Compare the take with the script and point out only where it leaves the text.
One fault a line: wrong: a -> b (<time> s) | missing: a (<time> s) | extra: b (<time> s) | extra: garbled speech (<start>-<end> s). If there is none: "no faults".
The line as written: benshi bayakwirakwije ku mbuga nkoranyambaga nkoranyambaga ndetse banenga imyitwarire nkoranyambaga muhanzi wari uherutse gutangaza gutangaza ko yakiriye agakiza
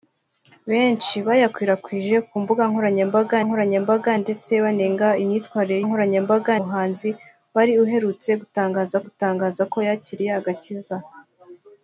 no faults